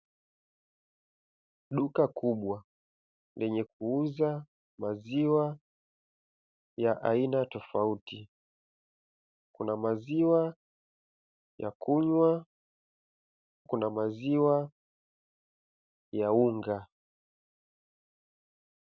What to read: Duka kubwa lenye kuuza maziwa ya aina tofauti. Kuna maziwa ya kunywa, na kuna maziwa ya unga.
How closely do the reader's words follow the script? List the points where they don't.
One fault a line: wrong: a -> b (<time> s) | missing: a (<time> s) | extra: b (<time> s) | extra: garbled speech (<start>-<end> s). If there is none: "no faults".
missing: na (12.5 s)